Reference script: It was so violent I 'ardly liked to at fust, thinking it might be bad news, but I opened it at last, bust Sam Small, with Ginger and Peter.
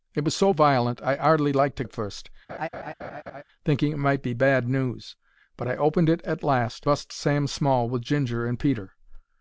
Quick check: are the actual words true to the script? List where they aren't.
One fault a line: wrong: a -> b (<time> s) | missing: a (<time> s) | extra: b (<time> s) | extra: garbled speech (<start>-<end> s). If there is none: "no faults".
no faults